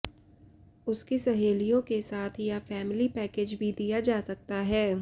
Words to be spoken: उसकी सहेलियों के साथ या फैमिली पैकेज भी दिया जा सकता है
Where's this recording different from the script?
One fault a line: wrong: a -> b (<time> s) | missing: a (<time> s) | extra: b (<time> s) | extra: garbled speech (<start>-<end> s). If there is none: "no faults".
no faults